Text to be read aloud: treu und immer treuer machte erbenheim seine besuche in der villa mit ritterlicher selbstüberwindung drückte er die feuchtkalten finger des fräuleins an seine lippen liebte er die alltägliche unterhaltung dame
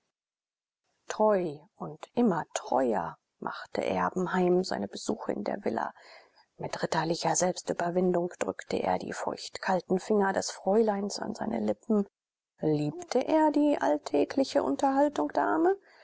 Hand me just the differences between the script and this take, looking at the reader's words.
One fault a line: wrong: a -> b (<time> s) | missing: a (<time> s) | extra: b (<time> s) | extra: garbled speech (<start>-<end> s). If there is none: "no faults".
no faults